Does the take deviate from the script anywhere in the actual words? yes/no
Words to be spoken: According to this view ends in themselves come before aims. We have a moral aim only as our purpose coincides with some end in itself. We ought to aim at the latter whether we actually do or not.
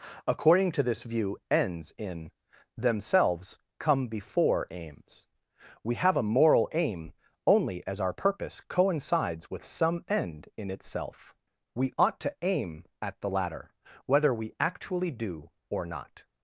no